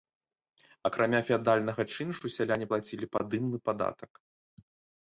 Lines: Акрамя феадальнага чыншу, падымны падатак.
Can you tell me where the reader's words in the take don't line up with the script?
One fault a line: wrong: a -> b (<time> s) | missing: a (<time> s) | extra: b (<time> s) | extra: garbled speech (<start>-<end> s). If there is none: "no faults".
extra: сяляне плацілі (2.4 s)